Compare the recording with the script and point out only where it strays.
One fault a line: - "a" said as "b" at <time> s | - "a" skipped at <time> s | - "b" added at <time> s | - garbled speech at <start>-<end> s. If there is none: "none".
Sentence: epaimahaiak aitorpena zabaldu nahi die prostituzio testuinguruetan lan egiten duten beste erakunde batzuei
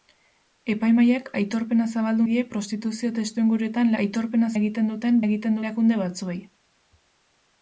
- "nahi" skipped at 2.3 s
- "lan" said as "aitorpena" at 4.0 s
- "beste" said as "egiten" at 5.3 s